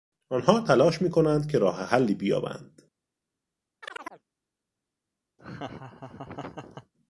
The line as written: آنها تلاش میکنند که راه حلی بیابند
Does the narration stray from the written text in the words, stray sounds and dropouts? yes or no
yes